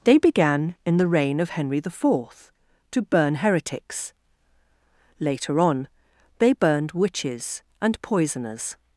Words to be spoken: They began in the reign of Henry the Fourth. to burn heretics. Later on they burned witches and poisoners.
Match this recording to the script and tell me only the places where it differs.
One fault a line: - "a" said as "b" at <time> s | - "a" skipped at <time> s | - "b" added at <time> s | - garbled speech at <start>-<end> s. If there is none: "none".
none